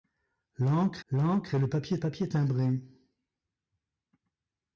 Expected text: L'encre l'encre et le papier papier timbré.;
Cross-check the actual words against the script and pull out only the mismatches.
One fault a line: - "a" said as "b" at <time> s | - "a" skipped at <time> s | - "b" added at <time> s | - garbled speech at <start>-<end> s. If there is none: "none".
none